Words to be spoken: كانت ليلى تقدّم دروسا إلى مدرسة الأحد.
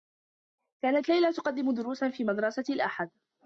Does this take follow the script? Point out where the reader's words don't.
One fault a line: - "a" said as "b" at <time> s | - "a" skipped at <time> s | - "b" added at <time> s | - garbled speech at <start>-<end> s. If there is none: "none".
- "إلى" said as "في" at 2.1 s